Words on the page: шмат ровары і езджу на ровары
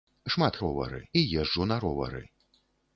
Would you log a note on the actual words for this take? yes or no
no